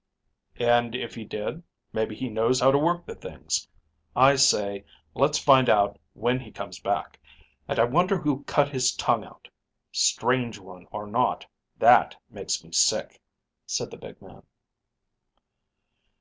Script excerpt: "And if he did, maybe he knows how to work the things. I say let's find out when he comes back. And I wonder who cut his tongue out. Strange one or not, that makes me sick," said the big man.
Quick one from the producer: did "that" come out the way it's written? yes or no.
yes